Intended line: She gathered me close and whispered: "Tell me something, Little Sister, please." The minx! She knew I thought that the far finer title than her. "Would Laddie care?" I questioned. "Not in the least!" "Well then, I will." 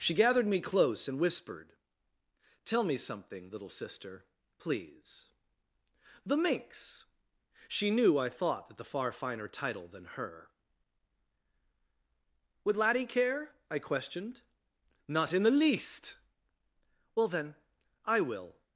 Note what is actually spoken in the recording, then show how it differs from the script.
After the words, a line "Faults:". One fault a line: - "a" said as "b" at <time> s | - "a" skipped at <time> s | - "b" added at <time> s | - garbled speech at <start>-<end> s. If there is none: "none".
She gathered me close and whispered: "Tell me something, Little Sister, please." The minx! She knew I thought that the far finer title than her. "Would Laddie care?" I questioned. "Not in the least!" "Well then, I will."
Faults:
none